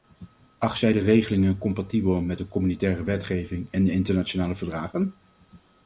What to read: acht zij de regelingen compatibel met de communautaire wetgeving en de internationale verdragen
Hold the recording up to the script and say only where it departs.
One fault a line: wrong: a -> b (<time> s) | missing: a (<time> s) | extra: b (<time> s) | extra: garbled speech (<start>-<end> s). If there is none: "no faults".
no faults